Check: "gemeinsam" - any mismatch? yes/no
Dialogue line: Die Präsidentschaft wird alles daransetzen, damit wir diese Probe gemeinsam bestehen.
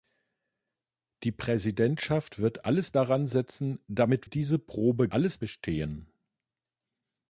yes